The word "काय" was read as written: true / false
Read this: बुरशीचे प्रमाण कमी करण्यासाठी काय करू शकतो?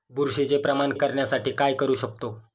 true